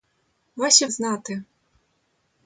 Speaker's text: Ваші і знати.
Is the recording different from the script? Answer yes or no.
no